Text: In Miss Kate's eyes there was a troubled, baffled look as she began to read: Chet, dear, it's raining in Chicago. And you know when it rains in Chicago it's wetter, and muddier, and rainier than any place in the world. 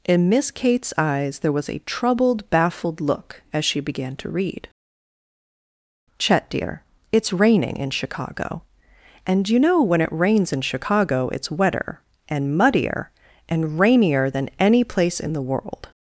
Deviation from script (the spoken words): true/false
false